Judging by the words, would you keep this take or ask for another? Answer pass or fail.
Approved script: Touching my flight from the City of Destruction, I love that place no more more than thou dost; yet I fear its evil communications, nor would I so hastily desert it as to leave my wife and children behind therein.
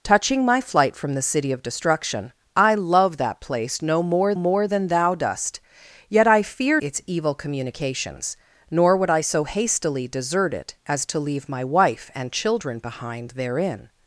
pass